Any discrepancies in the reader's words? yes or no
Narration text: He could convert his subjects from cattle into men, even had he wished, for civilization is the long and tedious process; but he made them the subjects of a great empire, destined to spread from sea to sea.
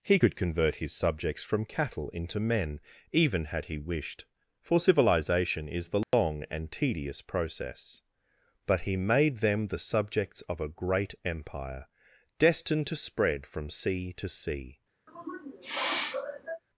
no